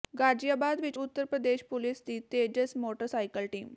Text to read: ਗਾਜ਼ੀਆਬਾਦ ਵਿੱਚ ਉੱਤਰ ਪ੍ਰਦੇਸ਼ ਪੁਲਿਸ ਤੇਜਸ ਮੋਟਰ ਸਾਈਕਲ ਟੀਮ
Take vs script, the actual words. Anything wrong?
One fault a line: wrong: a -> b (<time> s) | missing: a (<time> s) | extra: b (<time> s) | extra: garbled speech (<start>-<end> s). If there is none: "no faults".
extra: ਦੀ (2.0 s)